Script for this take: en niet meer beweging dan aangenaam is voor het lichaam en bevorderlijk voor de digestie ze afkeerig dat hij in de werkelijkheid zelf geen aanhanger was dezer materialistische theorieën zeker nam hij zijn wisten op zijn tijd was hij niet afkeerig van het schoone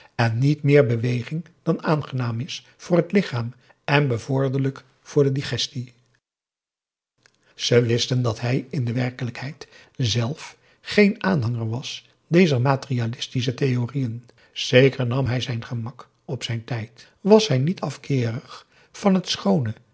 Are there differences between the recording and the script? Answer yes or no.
yes